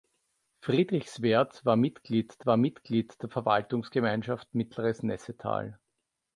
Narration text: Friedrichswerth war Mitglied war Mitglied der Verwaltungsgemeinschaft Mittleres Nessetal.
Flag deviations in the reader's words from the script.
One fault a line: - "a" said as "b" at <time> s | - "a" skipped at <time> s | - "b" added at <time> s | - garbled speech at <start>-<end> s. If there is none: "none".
none